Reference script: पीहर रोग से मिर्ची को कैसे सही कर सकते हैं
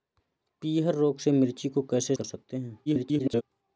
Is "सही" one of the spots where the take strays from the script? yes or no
yes